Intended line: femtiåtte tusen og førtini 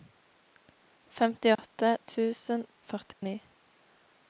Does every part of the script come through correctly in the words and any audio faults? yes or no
no